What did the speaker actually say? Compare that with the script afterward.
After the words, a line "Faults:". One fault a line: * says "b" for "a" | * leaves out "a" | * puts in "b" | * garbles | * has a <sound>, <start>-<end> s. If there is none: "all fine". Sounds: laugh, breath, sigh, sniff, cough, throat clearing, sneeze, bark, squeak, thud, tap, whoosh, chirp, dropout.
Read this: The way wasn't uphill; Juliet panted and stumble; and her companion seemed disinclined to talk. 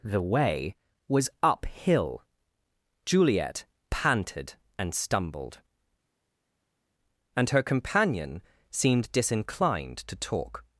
The way was uphill; Juliet panted and stumbled; and her companion seemed disinclined to talk.
Faults:
* says "was" for "wasn't"
* says "stumbled" for "stumble"